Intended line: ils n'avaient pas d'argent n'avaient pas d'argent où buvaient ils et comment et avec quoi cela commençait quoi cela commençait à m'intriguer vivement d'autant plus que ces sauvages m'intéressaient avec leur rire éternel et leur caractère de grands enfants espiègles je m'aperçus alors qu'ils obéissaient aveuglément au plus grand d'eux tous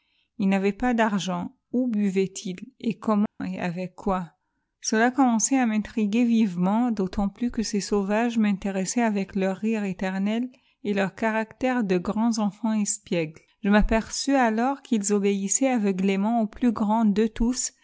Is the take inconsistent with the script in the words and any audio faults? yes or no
yes